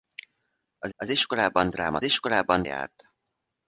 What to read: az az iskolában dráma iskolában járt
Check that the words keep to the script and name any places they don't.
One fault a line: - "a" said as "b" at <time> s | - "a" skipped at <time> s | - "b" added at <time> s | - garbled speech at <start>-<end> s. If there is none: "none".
none